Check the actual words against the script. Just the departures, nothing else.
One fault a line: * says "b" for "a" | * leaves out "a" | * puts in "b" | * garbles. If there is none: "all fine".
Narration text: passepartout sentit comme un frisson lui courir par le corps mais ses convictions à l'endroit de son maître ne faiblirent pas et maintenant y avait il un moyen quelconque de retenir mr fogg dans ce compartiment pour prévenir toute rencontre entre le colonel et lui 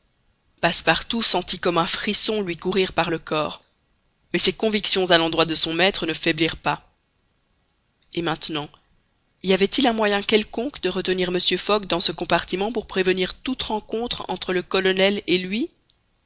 all fine